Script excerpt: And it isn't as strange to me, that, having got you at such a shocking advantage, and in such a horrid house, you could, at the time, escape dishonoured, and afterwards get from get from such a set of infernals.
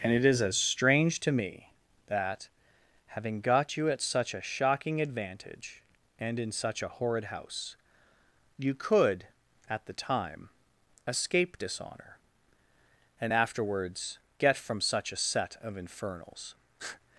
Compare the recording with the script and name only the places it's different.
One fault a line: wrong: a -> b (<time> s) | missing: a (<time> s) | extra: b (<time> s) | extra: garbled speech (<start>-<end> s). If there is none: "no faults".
wrong: isn't -> is (0.2 s)
wrong: dishonoured -> dishonour (11.6 s)
missing: get from (14.8 s)